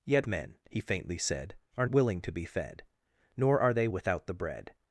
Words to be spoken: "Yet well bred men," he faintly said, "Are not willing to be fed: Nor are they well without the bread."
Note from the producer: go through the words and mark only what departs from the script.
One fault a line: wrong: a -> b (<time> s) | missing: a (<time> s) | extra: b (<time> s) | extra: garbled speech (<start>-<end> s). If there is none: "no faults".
missing: well bred (0.2 s)
missing: not (1.8 s)
missing: well (3.9 s)